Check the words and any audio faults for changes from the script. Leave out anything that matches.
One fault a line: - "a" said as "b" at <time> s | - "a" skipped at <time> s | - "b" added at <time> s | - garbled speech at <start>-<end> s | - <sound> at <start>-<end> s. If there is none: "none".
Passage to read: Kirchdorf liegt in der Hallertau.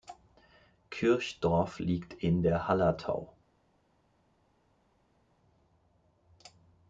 none